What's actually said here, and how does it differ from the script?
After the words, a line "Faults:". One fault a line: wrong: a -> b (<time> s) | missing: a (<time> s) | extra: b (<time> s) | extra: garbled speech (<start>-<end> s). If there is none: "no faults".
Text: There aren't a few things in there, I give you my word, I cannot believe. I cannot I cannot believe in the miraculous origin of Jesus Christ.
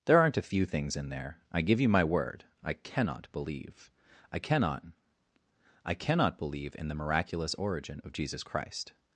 There aren't a few things in there, I give you my word, I cannot believe. I cannot I cannot believe in the miraculous origin of Jesus Christ.
Faults:
no faults